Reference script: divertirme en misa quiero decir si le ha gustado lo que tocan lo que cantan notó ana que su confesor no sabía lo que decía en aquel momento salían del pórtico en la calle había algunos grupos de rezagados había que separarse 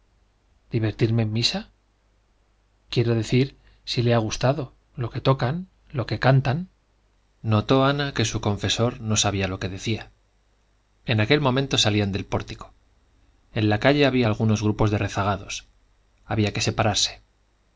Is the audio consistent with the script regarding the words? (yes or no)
yes